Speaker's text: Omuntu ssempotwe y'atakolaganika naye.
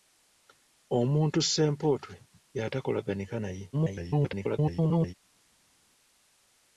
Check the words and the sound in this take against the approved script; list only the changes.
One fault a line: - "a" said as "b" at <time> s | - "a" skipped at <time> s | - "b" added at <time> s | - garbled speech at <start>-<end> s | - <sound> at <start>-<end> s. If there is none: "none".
- garbled speech at 3.7-5.1 s